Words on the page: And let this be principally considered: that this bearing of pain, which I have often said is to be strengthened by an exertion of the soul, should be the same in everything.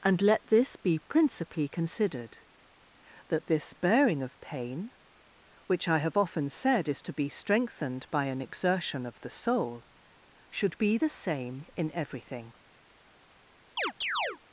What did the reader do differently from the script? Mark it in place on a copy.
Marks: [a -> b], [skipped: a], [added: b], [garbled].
And let this be principally considered: that this bearing of pain, which I have often said is to be strengthened by an exertion of the soul, should be the same in everything.